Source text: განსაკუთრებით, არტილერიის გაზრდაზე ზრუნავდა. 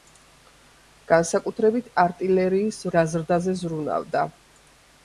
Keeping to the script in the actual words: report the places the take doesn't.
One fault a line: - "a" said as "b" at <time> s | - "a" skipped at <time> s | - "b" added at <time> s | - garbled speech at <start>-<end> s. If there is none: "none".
none